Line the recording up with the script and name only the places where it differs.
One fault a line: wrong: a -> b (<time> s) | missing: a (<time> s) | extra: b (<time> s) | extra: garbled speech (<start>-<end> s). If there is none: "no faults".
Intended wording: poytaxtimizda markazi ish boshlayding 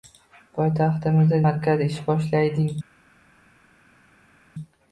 no faults